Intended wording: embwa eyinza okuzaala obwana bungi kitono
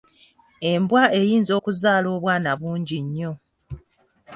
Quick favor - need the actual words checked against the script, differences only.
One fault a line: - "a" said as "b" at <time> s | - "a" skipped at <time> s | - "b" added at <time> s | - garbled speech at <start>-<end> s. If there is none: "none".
- "kitono" said as "nnyo" at 3.0 s